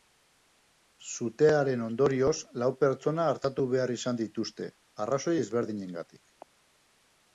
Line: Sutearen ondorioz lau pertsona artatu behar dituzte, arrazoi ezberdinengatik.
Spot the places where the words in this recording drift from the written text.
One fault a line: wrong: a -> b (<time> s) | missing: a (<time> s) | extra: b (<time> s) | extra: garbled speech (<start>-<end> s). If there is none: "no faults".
extra: izan (4.0 s)